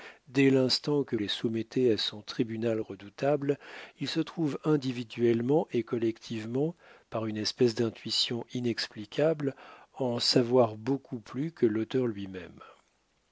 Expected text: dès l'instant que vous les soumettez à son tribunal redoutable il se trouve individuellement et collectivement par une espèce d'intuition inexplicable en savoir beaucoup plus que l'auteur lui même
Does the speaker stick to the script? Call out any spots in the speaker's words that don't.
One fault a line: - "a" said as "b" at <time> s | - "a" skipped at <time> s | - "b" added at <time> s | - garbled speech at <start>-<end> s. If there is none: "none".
- "vous" skipped at 1.1 s